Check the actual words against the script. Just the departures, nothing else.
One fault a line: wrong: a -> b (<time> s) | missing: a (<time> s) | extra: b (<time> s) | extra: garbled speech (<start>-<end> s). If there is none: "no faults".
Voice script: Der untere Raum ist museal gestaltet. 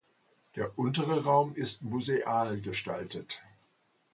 no faults